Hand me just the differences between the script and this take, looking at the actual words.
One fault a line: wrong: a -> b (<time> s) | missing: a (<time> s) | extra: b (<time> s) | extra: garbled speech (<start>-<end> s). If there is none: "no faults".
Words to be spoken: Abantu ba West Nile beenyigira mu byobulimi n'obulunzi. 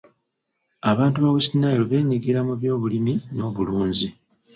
no faults